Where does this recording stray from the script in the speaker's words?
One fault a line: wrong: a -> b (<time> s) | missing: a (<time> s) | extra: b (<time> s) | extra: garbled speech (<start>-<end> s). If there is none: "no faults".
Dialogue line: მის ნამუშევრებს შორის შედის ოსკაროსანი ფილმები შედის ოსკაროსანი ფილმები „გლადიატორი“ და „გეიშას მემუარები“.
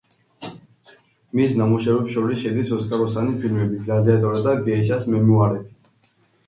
missing: შედის ოსკაროსანი ფილმები (3.8 s)